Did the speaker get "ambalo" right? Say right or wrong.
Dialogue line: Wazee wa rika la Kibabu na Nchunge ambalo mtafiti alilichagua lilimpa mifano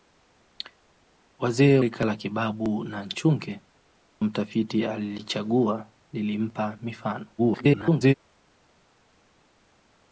wrong